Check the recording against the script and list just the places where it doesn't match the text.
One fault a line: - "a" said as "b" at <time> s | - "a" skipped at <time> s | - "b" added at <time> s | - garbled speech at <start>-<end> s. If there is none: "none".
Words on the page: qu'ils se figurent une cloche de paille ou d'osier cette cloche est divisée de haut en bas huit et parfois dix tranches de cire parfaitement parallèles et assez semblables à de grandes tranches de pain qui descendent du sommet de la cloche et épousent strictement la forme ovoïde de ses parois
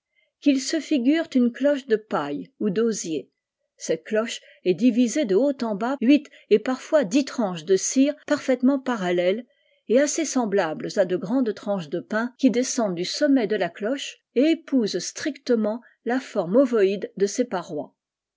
none